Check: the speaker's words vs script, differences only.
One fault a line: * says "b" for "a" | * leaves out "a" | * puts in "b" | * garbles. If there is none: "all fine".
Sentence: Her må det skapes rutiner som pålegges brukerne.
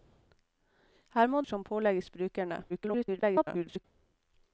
* leaves out "det skapes rutiner"
* garbles